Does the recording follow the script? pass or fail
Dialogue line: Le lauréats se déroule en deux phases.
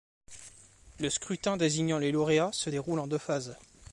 fail